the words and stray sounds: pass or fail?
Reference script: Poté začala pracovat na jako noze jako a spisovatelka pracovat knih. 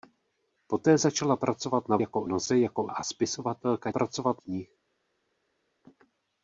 pass